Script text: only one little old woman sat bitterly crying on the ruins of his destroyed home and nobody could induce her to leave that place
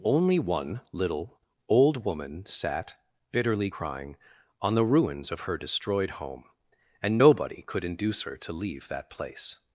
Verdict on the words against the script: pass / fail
fail